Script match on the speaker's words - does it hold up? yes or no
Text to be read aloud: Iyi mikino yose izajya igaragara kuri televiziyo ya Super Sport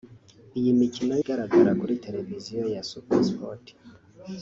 no